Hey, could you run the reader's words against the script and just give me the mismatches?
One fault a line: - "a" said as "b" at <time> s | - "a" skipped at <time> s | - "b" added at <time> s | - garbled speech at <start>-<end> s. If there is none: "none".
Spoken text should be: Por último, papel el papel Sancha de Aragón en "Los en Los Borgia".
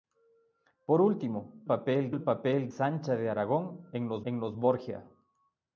none